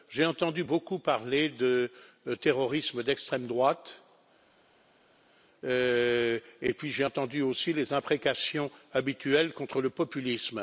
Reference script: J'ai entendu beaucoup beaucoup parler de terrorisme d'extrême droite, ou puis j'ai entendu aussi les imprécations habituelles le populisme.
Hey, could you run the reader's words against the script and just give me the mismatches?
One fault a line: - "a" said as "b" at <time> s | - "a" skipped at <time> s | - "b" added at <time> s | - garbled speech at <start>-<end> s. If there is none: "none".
- "beaucoup" skipped at 1.0 s
- "ou" said as "et" at 5.6 s
- "contre" added at 9.5 s